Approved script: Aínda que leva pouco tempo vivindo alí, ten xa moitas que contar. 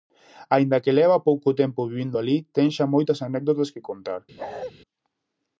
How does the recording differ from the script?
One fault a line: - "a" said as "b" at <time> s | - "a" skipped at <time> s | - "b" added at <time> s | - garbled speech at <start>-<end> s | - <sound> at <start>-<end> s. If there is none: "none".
- "anécdotas" added at 3.3 s
- bark at 4.4-4.7 s